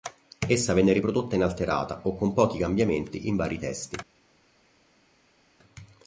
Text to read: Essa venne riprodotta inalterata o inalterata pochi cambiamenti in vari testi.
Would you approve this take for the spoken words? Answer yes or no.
no